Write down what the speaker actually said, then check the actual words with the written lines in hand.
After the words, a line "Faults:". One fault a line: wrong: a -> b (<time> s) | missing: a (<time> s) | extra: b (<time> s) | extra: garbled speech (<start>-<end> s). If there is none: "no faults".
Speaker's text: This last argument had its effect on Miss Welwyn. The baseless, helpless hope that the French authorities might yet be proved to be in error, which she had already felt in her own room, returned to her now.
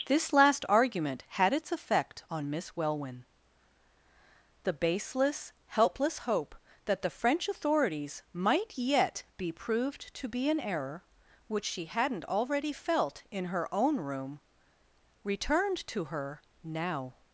This last argument had its effect on Miss Welwyn. The baseless, helpless hope that the French authorities might yet be proved to be in error, which she hadn't already felt in her own room, returned to her now.
Faults:
wrong: had -> hadn't (11.9 s)